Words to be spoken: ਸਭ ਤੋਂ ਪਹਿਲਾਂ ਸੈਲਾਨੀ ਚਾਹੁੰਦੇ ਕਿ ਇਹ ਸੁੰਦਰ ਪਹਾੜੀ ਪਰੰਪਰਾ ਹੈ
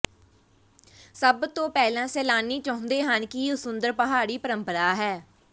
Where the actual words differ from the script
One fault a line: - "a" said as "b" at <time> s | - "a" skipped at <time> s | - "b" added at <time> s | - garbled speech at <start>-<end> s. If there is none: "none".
- "ਹਨ" added at 3.0 s